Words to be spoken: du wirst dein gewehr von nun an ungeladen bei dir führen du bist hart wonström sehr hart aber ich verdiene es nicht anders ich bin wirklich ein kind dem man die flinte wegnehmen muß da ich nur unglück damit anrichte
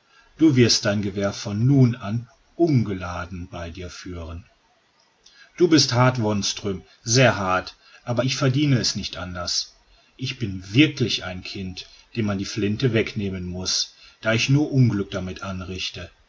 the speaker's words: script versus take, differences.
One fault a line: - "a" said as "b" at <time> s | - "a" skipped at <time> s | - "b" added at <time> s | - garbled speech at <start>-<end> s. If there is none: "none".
none